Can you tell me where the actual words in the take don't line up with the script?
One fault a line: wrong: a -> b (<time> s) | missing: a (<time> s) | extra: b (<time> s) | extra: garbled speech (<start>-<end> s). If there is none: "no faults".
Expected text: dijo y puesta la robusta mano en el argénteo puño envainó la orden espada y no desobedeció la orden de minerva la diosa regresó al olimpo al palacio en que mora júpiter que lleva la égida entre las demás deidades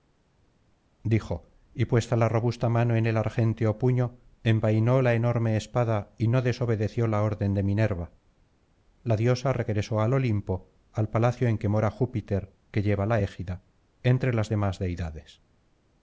wrong: orden -> enorme (5.1 s)